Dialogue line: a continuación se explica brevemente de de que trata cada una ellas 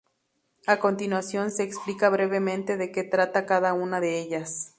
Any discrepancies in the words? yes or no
yes